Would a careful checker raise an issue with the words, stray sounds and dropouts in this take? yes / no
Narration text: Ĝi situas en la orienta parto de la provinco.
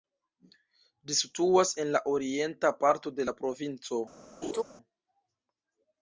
yes